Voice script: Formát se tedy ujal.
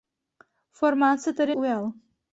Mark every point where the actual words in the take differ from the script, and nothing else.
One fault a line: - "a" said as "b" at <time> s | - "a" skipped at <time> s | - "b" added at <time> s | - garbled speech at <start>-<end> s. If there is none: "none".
none